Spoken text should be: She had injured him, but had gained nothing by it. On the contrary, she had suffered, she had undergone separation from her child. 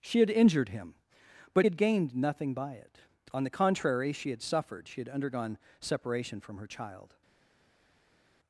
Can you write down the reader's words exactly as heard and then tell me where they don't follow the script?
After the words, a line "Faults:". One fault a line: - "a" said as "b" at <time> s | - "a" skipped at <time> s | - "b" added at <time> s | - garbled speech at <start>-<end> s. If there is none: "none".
She had injured him, but had gained nothing by it. On the contrary, she had suffered, she had undergone separation from her child.
Faults:
none